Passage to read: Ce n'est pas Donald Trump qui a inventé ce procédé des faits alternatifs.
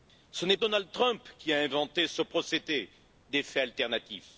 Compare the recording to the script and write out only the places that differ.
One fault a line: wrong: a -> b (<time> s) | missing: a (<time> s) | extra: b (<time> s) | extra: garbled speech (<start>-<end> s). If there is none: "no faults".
missing: pas (0.6 s)